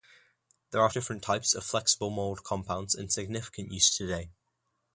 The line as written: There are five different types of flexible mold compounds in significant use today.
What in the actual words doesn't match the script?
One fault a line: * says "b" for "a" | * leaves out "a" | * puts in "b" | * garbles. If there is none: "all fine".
* leaves out "five"